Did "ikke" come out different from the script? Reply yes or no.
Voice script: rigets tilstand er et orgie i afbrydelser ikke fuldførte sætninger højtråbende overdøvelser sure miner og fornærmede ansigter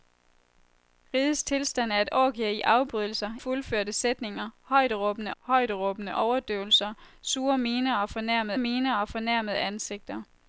yes